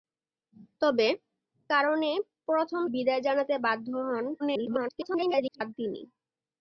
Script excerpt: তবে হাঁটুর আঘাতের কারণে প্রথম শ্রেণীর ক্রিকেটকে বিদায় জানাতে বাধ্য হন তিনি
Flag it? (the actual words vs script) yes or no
yes